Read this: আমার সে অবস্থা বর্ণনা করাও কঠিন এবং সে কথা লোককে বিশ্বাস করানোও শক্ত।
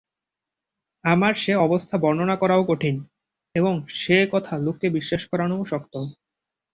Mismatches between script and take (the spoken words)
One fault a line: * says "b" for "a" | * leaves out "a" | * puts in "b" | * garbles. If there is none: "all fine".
all fine